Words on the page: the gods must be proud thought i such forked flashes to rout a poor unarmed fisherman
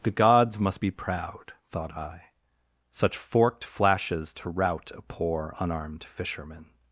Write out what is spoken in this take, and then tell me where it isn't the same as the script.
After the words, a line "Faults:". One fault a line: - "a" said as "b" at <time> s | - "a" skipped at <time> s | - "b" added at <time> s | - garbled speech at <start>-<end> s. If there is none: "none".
the gods must be proud thought i such forked flashes to rout a poor unarmed fisherman
Faults:
none